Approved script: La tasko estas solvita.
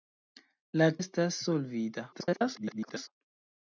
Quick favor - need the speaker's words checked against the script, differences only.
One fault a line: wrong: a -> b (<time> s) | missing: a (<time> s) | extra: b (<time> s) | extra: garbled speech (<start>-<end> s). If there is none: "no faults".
missing: tasko (0.9 s)
extra: garbled speech (2.1-3.1 s)